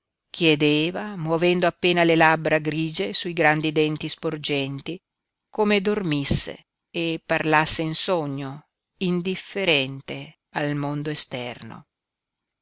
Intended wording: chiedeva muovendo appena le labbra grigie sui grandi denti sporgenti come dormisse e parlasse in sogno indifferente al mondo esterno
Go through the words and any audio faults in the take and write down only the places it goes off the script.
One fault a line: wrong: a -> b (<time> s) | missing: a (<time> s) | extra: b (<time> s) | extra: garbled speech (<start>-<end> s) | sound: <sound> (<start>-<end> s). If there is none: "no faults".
no faults